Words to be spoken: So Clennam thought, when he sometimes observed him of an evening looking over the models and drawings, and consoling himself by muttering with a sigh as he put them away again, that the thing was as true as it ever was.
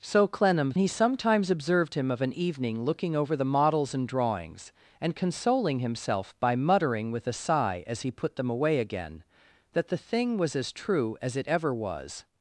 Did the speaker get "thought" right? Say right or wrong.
wrong